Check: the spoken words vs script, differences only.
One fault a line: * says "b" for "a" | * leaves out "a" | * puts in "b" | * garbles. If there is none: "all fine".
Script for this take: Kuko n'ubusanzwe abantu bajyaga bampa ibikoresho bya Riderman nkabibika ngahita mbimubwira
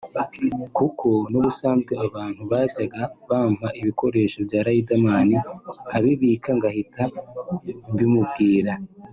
all fine